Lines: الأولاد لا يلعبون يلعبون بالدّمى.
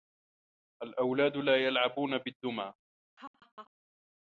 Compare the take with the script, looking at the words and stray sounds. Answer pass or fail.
fail